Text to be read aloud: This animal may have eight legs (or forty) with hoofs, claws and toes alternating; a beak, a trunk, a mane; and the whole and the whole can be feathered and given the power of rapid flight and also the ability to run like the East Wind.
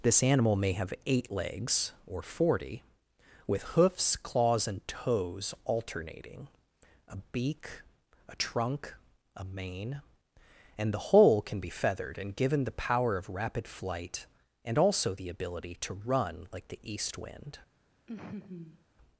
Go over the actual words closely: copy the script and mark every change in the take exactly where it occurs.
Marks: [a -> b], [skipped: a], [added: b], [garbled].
This animal may have eight legs (or forty) with hoofs, claws and toes alternating; a beak, a trunk, a mane; and the whole [skipped: and the whole] can be feathered and given the power of rapid flight and also the ability to run like the East Wind.